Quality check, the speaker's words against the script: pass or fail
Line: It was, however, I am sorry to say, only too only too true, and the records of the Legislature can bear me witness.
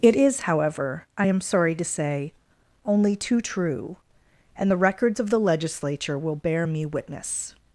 fail